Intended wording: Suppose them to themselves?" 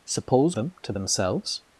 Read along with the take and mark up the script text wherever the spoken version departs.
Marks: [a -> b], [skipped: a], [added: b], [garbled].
Suppose them to themselves?"